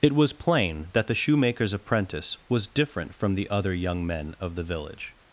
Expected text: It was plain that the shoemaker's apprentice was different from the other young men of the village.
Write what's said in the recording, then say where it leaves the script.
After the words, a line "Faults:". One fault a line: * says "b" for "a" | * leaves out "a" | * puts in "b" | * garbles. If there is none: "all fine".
It was plain that the shoemaker's apprentice was different from the other young men of the village.
Faults:
all fine